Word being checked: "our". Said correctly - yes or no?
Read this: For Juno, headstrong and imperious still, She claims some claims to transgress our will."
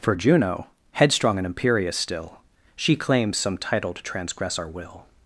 yes